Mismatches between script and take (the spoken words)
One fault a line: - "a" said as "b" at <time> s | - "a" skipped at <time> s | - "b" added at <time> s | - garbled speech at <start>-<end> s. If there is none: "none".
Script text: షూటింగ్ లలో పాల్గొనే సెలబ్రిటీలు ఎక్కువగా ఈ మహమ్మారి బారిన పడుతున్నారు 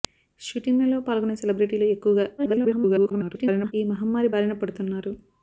- garbled speech at 2.4-3.7 s